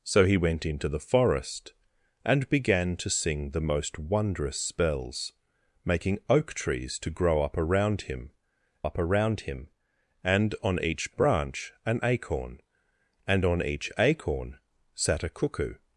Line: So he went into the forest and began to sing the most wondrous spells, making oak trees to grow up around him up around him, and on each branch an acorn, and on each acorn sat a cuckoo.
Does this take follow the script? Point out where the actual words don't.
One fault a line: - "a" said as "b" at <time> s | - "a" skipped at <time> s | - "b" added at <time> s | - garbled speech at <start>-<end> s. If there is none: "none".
none